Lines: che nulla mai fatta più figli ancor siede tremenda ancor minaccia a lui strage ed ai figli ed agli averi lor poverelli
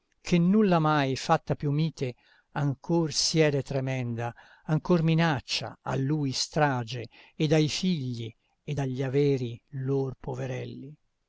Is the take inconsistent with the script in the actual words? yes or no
yes